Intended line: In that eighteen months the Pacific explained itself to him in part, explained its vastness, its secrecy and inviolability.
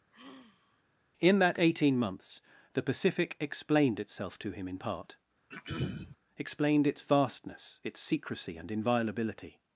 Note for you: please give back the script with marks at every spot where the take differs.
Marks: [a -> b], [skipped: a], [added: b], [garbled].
In that eighteen months the Pacific explained itself to him in part, explained its vastness, its secrecy and inviolability.